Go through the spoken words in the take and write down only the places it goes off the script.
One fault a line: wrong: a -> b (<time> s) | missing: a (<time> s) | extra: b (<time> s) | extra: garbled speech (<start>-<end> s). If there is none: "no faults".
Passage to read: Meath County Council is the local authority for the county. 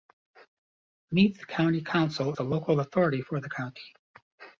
missing: is (2.3 s)